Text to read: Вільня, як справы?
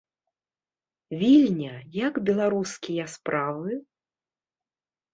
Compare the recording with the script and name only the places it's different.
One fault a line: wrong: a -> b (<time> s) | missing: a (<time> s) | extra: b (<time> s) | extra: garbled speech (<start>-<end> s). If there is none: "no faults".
extra: беларускія (2.3 s)